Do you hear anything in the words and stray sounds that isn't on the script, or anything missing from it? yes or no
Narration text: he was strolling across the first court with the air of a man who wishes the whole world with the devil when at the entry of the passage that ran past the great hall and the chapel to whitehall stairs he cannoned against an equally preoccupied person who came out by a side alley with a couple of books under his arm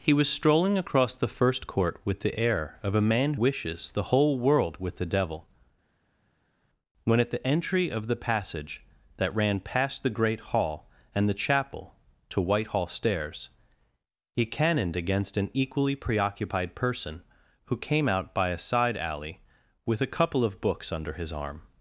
yes